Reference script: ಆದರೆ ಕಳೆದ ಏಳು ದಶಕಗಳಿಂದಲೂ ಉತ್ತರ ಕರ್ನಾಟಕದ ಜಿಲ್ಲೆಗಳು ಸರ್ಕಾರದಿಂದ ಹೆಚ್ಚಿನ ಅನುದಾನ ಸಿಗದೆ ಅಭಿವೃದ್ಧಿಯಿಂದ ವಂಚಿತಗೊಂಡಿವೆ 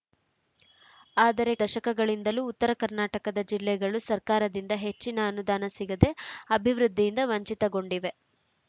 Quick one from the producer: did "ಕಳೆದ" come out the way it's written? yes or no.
no